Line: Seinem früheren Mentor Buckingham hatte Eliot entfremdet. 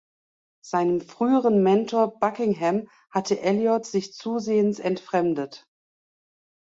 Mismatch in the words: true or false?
true